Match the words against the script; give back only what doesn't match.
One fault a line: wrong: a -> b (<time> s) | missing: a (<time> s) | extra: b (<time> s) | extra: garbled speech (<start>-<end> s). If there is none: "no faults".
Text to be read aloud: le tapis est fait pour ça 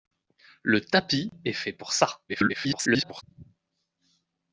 extra: garbled speech (2.3-3.2 s)